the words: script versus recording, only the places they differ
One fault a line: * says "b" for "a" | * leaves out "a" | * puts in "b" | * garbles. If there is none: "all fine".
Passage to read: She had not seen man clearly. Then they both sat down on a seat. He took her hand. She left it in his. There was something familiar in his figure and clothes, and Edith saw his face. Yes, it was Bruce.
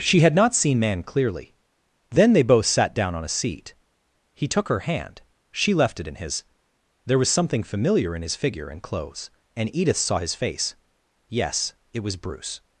all fine